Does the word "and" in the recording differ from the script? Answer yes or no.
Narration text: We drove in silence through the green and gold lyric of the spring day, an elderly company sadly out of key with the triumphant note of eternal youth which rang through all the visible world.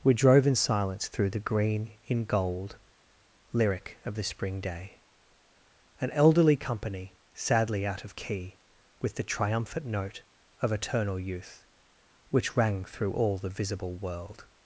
yes